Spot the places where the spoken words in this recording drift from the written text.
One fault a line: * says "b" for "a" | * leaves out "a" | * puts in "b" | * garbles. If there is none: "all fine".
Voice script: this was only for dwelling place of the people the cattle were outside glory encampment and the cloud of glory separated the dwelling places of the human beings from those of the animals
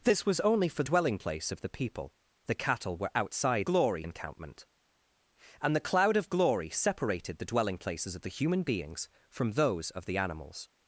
all fine